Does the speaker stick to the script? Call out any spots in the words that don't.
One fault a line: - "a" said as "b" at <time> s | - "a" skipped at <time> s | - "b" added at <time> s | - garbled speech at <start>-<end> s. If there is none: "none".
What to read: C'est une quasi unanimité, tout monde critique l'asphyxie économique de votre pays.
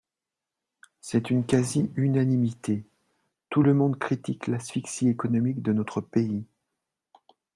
- "le" added at 3.6 s
- "votre" said as "notre" at 5.7 s